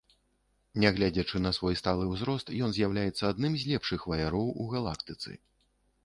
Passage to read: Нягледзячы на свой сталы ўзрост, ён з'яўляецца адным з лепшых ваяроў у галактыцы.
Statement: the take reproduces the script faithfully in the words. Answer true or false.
true